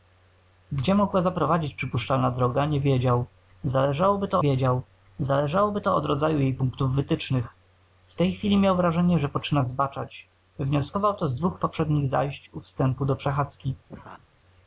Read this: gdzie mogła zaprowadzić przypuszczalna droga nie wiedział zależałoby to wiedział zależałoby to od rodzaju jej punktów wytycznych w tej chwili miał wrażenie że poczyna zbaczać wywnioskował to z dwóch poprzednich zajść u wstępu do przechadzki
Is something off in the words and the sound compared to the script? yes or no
yes